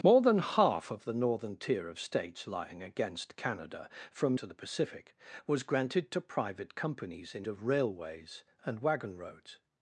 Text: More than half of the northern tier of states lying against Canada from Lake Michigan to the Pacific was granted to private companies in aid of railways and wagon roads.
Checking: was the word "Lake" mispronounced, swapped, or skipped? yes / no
yes